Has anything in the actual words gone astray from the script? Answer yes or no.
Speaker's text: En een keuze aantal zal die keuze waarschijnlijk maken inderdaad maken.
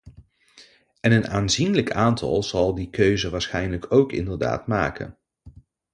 yes